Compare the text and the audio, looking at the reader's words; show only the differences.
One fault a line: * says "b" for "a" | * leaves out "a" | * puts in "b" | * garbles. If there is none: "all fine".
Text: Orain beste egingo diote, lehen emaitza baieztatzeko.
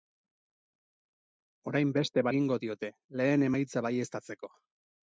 all fine